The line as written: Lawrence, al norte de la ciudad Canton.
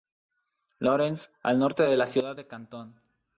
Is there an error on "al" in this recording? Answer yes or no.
no